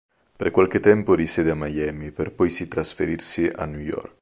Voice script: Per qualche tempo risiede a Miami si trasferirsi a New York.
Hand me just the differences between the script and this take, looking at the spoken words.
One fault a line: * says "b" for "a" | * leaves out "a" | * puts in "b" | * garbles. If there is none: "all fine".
* puts in "per poi"